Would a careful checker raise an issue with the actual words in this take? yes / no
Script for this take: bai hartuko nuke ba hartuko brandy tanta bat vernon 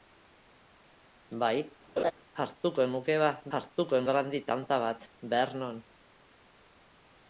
no